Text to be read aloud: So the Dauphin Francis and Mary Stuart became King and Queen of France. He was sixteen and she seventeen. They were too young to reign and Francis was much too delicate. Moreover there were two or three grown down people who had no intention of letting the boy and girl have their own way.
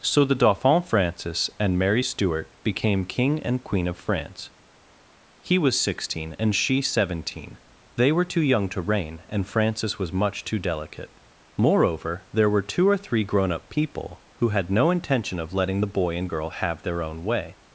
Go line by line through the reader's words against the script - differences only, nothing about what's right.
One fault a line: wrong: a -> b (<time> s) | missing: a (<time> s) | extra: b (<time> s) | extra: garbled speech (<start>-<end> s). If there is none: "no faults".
wrong: down -> up (13.5 s)